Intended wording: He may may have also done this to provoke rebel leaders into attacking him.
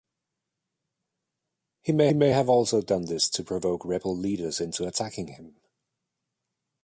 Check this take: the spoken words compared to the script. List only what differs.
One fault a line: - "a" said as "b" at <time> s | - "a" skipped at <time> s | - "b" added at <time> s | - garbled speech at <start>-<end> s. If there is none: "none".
none